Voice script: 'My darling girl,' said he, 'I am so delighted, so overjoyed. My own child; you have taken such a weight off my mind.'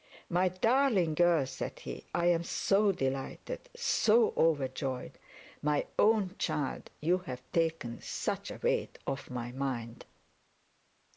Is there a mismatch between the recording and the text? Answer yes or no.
no